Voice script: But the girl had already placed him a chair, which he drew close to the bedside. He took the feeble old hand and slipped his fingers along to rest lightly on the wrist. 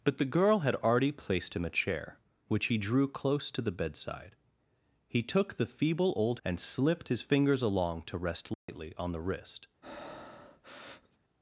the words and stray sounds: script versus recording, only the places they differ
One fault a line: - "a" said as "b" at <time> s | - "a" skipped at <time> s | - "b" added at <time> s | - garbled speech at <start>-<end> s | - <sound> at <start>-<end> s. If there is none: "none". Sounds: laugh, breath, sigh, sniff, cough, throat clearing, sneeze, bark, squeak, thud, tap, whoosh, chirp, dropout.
- "hand" skipped at 6.4 s
- dropout at 8.5-8.7 s
- breath at 9.8-11.2 s